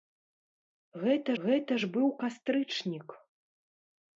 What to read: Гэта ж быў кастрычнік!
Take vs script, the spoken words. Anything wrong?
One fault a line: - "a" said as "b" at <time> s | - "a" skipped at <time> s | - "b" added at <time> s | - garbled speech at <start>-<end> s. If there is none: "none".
- "гэта" added at 1.4 s